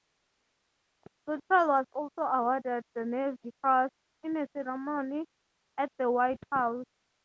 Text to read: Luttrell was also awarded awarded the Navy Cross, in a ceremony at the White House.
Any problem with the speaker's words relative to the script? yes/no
yes